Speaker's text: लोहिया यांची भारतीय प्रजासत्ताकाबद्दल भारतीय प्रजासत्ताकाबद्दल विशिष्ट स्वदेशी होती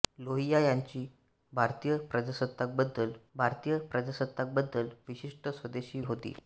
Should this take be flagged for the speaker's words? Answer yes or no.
no